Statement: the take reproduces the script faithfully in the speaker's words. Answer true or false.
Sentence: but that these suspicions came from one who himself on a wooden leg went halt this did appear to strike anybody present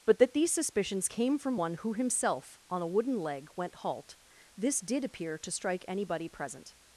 true